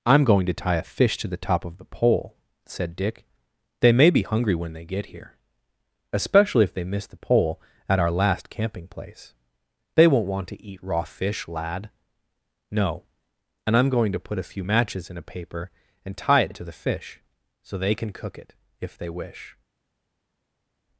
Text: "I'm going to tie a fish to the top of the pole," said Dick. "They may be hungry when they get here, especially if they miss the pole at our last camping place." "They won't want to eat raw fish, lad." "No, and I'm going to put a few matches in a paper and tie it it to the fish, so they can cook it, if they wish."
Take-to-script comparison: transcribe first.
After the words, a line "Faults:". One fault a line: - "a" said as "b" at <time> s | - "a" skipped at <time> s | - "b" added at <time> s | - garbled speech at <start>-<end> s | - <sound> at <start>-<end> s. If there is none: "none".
"I'm going to tie a fish to the top of the pole," said Dick. "They may be hungry when they get here, especially if they miss the pole at our last camping place." "They won't want to eat raw fish, lad." "No, and I'm going to put a few matches in a paper and tie it it to the fish, so they can cook it, if they wish."
Faults:
none